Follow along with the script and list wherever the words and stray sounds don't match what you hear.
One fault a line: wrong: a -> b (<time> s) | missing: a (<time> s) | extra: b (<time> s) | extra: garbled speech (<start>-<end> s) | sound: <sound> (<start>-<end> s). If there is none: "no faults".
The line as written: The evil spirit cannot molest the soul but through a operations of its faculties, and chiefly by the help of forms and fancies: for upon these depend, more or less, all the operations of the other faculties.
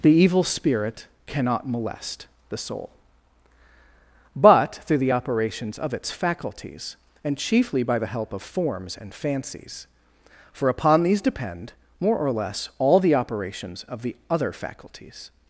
wrong: a -> the (5.0 s)